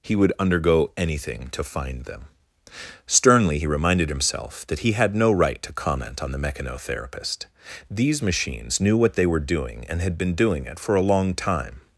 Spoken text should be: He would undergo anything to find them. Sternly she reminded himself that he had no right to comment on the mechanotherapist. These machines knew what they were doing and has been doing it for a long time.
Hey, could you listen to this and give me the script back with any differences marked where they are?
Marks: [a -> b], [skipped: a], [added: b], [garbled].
He would undergo anything to find them. Sternly [she -> he] reminded himself that he had no right to comment on the mechanotherapist. These machines knew what they were doing and [has -> had] been doing it for a long time.